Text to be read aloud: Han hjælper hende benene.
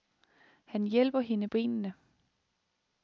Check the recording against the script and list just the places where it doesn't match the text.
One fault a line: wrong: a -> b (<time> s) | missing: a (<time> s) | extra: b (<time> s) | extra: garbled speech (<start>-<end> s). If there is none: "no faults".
no faults